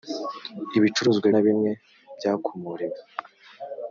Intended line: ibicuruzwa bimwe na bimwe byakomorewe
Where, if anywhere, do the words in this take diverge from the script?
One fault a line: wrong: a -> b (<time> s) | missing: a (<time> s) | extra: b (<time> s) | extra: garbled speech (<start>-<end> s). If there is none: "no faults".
missing: bimwe (1.3 s)